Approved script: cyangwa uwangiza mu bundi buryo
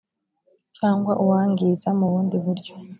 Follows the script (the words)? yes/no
yes